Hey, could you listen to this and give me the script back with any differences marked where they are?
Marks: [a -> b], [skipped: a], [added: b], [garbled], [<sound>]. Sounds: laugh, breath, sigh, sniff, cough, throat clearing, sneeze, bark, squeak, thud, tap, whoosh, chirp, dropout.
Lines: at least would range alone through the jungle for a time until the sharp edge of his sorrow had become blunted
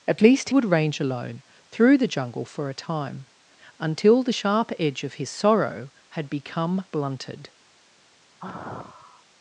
at least would range alone through the jungle for a time until the sharp edge of his sorrow had become blunted [sigh]